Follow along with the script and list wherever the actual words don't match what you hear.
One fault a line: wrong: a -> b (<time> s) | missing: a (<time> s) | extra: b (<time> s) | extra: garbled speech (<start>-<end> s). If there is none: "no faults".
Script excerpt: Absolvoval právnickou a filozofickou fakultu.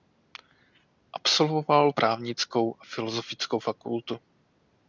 no faults